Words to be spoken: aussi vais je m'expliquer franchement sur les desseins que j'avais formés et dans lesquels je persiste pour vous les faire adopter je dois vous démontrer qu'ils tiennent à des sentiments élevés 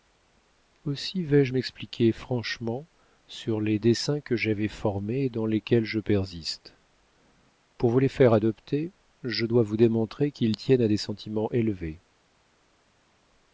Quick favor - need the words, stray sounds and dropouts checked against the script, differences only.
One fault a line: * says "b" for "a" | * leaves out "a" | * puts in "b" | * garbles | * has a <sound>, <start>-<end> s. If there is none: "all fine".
all fine